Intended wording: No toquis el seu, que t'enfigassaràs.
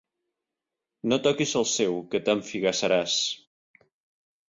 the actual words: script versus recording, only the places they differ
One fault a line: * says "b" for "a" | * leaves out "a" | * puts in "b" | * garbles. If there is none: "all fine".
all fine